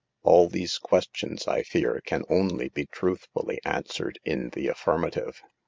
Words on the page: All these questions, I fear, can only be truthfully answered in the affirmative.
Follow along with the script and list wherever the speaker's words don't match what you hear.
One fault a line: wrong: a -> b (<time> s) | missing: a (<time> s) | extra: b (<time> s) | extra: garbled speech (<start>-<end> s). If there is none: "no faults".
no faults